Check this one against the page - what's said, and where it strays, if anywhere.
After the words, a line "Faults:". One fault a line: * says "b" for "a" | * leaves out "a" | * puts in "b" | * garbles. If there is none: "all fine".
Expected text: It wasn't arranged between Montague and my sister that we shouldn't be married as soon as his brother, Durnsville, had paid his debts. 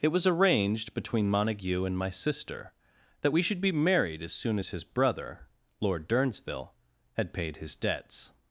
It was arranged between Montague and my sister that we should be married as soon as his brother, Lord Durnsville, had paid his debts.
Faults:
* says "was" for "wasn't"
* says "should" for "shouldn't"
* puts in "Lord"